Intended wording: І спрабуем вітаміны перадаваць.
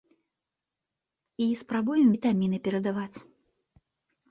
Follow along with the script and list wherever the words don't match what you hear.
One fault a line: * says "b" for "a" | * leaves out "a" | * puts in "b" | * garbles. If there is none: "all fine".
all fine